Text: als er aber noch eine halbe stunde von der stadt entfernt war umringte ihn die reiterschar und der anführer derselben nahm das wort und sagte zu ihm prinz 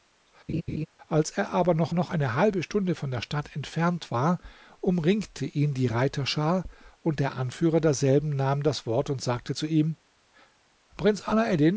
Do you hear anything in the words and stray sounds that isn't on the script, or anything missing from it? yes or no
yes